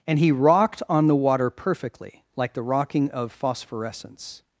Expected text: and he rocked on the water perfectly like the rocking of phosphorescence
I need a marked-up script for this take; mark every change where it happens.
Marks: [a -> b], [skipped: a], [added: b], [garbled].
and he rocked on the water perfectly like the rocking of phosphorescence